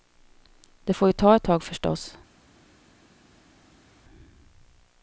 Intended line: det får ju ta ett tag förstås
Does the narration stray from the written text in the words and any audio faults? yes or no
no